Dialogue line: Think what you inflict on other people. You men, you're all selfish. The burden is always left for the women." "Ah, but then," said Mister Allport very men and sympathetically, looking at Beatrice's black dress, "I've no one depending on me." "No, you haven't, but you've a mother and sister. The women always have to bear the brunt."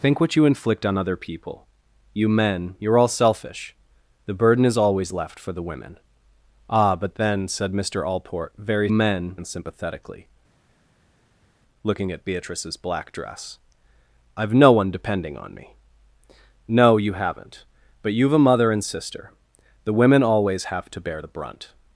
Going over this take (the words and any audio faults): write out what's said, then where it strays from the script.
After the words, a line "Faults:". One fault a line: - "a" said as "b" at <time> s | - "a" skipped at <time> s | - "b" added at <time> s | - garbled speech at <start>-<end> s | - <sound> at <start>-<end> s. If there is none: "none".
Think what you inflict on other people. You men, you're all selfish. The burden is always left for the women." "Ah, but then," said Mister Allport very men and sympathetically, looking at Beatrice's black dress, "I've no one depending on me." "No, you haven't, but you've a mother and sister. The women always have to bear the brunt."
Faults:
none